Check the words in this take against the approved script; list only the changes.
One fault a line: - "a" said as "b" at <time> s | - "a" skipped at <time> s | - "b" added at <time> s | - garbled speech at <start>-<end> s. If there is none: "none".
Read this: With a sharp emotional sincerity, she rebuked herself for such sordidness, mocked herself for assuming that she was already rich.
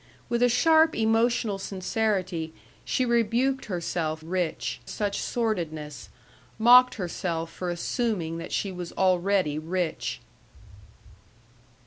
- "for" said as "rich" at 4.2 s